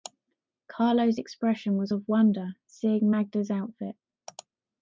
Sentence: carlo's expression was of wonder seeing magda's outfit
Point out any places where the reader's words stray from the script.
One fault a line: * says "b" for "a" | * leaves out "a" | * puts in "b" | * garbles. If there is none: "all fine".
all fine